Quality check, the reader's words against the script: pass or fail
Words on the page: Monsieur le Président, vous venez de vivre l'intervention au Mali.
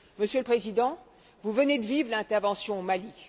pass